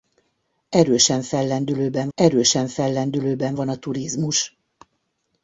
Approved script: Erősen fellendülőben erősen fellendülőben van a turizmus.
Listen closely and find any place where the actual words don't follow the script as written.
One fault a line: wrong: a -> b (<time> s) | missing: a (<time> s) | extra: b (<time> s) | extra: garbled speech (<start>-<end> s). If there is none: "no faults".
no faults